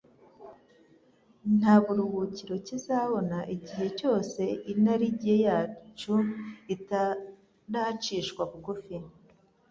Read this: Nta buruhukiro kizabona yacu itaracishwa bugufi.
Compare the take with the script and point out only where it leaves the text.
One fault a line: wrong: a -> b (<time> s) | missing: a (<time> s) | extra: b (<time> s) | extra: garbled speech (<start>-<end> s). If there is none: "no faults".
extra: igihe cyose inarijye (3.5 s)